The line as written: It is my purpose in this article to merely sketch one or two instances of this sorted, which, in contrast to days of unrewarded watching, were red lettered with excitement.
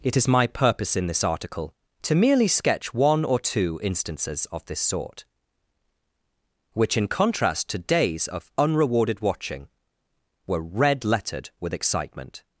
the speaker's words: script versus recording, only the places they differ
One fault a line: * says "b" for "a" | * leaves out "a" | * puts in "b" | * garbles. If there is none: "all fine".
* says "sort" for "sorted"